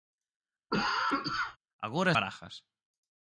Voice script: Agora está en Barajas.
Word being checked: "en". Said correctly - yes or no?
no